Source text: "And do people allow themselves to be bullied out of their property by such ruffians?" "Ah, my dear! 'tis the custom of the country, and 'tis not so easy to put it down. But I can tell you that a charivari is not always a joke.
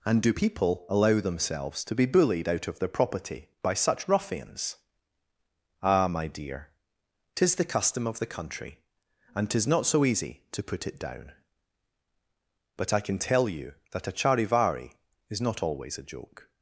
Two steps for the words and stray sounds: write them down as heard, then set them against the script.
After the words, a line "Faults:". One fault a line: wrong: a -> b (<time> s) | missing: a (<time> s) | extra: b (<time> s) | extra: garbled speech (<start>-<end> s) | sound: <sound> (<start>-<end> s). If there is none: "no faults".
"And do people allow themselves to be bullied out of their property by such ruffians?" "Ah, my dear! 'tis the custom of the country, and 'tis not so easy to put it down. But I can tell you that a charivari is not always a joke.
Faults:
no faults